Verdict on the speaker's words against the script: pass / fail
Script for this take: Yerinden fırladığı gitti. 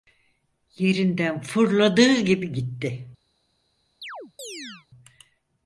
fail